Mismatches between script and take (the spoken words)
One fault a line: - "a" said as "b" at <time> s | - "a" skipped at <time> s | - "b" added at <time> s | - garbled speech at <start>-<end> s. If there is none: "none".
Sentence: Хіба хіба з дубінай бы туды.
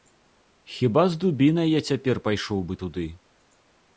- "хіба" skipped at 1.0 s
- "я цяпер пайшоў" added at 1.7 s